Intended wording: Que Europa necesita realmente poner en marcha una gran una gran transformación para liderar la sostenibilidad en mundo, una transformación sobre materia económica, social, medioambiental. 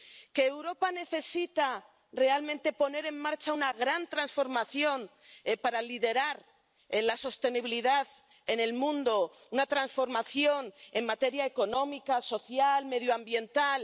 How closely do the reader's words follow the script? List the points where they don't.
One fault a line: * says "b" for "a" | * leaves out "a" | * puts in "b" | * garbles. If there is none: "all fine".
* leaves out "una gran"
* puts in "el"
* says "en" for "sobre"